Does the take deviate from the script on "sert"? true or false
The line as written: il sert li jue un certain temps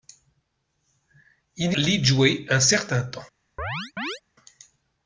true